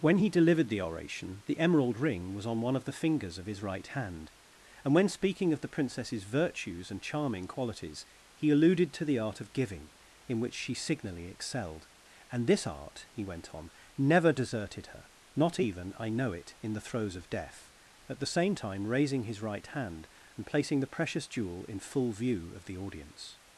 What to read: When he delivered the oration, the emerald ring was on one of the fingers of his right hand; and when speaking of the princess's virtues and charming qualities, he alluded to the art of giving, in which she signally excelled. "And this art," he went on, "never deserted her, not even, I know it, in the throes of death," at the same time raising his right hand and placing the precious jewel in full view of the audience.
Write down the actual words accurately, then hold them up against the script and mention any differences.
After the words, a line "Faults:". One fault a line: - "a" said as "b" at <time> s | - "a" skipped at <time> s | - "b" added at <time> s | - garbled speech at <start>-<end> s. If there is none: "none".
When he delivered the oration, the emerald ring was on one of the fingers of his right hand; and when speaking of the princess's virtues and charming qualities, he alluded to the art of giving, in which she signally excelled. "And this art," he went on, "never deserted her, not even, I know it, in the throes of death," at the same time raising his right hand and placing the precious jewel in full view of the audience.
Faults:
none